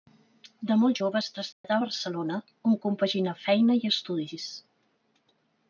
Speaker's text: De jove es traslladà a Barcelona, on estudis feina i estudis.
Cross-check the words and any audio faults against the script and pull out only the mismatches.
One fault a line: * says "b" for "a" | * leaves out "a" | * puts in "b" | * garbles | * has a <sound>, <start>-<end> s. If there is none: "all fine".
* puts in "molt"
* has a dropout, 1.5-1.6 s
* says "compaginà" for "estudis"